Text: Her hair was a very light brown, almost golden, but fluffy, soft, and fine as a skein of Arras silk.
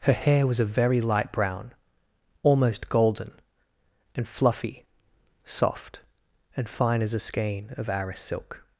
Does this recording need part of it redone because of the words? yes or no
yes